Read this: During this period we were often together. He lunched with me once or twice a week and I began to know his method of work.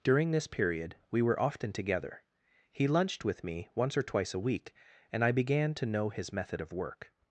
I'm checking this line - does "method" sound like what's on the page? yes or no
yes